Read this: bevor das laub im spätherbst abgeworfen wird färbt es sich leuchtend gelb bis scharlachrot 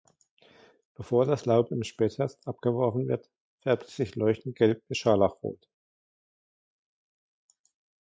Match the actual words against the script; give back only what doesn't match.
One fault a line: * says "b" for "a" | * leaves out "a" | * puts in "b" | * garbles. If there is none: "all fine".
all fine